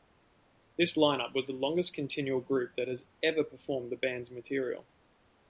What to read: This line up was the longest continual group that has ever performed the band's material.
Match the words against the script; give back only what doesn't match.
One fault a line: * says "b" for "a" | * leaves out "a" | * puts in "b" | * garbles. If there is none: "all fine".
all fine